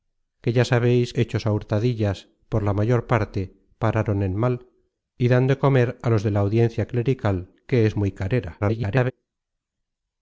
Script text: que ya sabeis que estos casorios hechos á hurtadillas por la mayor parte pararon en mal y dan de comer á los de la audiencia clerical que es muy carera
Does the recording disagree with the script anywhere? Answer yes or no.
yes